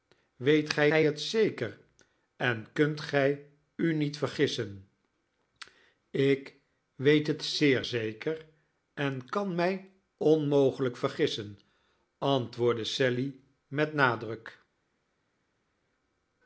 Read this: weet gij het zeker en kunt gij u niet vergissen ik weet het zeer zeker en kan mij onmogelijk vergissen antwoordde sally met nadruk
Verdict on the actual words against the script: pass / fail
fail